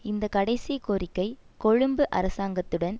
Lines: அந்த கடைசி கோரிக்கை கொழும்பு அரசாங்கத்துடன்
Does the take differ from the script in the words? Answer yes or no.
yes